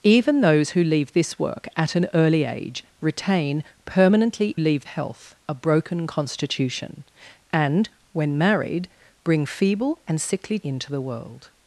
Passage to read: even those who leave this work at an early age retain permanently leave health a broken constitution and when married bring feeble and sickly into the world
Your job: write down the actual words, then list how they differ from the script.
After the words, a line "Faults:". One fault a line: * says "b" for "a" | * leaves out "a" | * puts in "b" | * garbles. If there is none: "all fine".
even those who leave this work at an early age retain permanently leave health a broken constitution and when married bring feeble and sickly into the world
Faults:
all fine